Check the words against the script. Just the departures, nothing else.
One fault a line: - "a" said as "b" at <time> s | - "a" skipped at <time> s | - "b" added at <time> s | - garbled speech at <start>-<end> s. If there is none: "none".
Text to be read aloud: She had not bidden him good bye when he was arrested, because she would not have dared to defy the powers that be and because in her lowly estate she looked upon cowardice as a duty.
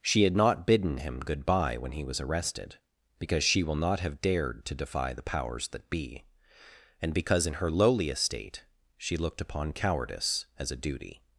- "would" said as "will" at 3.6 s